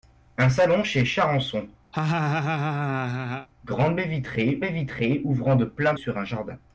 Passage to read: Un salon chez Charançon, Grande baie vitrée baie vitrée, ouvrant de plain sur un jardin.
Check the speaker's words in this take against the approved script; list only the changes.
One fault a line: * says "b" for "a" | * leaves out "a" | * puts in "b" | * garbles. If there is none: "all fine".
all fine